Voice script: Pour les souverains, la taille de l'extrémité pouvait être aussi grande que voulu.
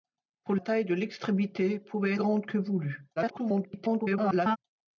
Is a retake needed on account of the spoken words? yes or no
yes